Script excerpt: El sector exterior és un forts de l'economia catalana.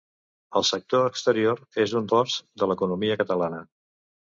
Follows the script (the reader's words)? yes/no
yes